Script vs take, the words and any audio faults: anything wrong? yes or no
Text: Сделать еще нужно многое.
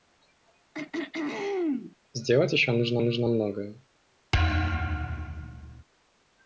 yes